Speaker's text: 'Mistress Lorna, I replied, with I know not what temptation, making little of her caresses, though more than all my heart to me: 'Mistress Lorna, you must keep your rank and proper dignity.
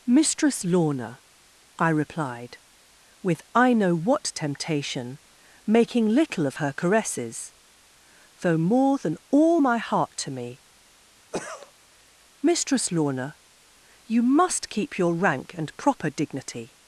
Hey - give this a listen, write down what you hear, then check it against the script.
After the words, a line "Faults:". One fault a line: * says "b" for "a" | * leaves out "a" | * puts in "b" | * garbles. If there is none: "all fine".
'Mistress Lorna, I replied, with I know what temptation, making little of her caresses, though more than all my heart to me: 'Mistress Lorna, you must keep your rank and proper dignity.
Faults:
* leaves out "not"